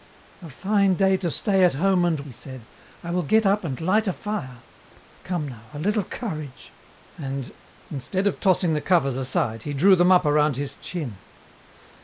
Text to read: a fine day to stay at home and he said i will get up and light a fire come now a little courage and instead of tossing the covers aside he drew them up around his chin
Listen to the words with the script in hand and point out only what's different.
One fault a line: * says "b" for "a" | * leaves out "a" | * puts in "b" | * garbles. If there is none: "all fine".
all fine